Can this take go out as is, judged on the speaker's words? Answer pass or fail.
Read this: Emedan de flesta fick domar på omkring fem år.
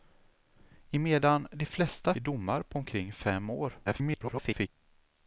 fail